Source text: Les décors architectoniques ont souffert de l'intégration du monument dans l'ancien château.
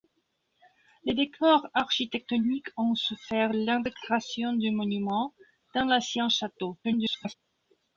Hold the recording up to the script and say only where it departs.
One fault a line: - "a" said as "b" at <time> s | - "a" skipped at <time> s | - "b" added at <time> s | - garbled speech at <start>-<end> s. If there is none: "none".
- "de" skipped at 3.5 s
- garbled speech at 6.8-7.3 s